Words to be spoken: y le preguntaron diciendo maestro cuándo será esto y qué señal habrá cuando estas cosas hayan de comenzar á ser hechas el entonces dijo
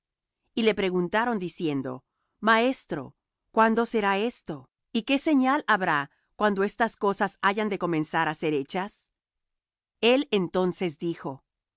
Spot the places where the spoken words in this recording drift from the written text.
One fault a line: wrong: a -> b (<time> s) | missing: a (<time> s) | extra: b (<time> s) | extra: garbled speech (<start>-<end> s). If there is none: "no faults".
no faults